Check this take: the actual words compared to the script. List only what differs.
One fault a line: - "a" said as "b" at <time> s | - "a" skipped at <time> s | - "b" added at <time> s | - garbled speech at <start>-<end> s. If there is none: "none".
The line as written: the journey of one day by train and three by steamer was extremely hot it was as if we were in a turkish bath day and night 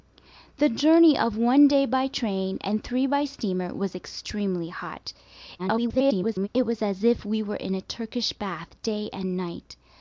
- garbled speech at 5.6-6.5 s